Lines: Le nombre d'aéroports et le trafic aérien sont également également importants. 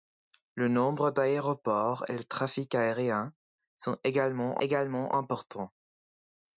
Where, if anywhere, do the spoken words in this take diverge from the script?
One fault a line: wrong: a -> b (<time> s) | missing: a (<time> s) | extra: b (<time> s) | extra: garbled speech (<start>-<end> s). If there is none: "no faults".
no faults